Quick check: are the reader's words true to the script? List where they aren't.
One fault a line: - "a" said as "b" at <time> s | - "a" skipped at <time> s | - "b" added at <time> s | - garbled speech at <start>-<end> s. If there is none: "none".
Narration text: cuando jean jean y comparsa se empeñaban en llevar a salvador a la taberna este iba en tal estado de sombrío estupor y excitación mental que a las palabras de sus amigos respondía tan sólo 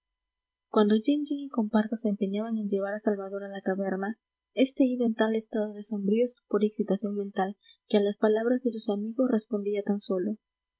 none